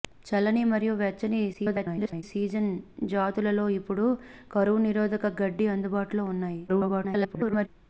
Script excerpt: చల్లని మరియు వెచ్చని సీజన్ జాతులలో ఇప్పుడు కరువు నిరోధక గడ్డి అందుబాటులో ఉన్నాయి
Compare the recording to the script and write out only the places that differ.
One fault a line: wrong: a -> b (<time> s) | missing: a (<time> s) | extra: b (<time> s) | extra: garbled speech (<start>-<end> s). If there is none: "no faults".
extra: garbled speech (1.5-2.2 s)
extra: garbled speech (6.7-7.7 s)